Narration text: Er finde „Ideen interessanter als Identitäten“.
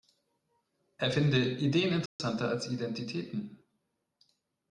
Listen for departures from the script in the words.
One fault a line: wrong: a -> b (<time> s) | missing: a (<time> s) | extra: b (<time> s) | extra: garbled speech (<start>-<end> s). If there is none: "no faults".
no faults